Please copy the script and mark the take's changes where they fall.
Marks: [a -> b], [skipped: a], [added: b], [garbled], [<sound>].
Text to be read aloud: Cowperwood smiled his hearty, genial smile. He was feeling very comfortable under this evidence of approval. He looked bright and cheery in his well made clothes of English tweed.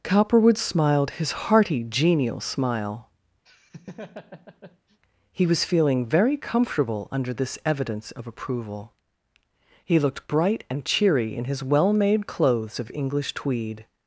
Cowperwood smiled his hearty, genial smile. [laugh] He was feeling very comfortable under this evidence of approval. He looked bright and cheery in his well made clothes of English tweed.